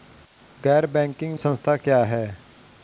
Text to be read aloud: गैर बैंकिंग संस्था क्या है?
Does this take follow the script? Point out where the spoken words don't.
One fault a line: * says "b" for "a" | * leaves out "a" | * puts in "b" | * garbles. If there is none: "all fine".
all fine